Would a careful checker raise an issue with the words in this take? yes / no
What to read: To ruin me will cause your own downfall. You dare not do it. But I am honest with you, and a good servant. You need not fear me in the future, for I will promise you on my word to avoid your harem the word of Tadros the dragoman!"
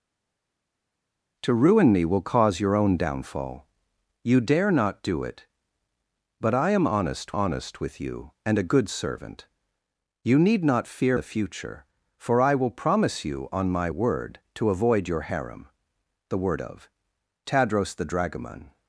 yes